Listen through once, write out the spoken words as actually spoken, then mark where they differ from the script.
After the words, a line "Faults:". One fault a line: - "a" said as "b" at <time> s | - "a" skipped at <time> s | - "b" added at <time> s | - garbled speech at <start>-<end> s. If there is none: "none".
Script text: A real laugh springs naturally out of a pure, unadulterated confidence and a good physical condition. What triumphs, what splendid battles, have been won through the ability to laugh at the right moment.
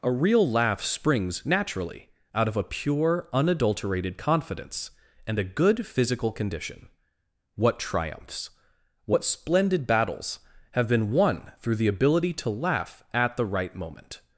A real laugh springs naturally out of a pure, unadulterated confidence and a good physical condition. What triumphs, what splendid battles, have been won through the ability to laugh at the right moment.
Faults:
none